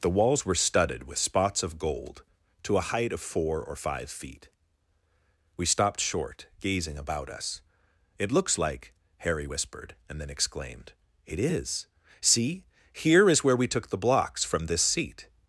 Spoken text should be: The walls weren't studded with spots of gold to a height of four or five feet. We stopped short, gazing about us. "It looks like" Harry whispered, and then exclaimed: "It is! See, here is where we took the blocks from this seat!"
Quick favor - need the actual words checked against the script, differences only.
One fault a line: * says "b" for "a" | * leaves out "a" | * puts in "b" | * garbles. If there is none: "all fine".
* says "were" for "weren't"